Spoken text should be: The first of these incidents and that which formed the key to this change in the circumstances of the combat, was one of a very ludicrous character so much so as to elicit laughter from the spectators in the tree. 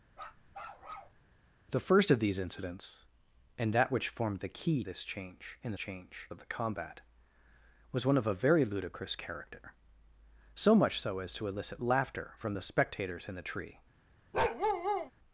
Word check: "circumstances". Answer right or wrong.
wrong